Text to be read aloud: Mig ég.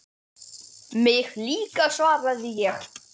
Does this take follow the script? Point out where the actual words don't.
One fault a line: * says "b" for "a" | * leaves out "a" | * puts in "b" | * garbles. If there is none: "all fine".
* puts in "líka svaraði"